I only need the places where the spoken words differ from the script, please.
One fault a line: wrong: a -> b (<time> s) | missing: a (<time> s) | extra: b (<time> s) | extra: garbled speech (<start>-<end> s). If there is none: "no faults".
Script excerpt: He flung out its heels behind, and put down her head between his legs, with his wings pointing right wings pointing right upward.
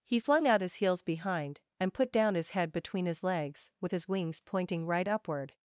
wrong: its -> his (0.6 s)
wrong: her -> his (2.4 s)
missing: wings pointing right (5.1 s)